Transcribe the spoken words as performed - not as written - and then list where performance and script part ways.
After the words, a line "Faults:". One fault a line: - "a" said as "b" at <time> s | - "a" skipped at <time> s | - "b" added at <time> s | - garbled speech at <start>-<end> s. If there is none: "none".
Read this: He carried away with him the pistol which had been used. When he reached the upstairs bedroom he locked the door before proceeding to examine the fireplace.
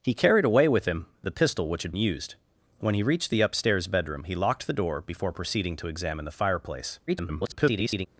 He carried away with him the pistol which had used. When he reached the upstairs bedroom he locked the door before proceeding to examine the fireplace. [garbled]
Faults:
- "been" skipped at 1.9 s
- garbled speech at 7.1-8.1 s